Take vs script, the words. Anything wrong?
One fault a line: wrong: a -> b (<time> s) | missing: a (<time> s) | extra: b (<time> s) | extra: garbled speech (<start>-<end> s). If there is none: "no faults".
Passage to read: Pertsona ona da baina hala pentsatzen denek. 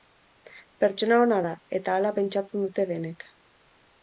wrong: baina -> eta (1.8 s)
extra: dute (2.7 s)